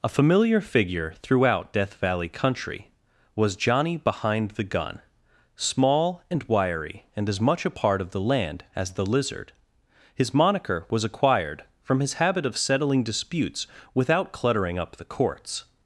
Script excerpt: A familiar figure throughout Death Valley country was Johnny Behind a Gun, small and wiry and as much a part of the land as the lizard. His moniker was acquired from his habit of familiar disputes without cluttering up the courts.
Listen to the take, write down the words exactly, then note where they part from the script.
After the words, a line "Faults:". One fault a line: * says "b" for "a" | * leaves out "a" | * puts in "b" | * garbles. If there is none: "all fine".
A familiar figure throughout Death Valley country was Johnny Behind the Gun, small and wiry and as much a part of the land as the lizard. His moniker was acquired from his habit of settling disputes without cluttering up the courts.
Faults:
* says "the" for "a"
* says "settling" for "familiar"